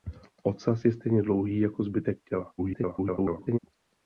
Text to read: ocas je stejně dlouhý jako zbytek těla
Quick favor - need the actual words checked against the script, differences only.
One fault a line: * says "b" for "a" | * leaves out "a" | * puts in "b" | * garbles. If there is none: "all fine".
* garbles